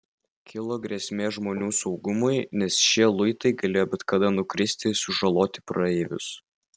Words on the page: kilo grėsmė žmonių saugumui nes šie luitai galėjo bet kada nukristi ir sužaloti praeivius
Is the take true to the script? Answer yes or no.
yes